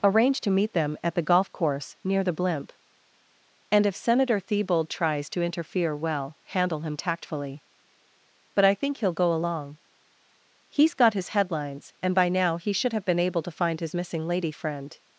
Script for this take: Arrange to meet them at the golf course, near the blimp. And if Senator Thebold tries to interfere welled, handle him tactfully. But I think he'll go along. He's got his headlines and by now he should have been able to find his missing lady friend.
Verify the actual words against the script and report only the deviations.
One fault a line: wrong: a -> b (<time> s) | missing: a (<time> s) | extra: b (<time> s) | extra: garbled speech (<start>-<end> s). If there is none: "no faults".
wrong: welled -> well (6.0 s)